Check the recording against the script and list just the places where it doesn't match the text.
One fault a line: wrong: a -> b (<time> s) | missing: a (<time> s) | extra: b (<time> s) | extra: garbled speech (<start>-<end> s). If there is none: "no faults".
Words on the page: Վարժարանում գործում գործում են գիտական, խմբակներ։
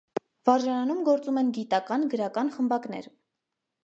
missing: գործում (1.4 s)
extra: գրական (2.1 s)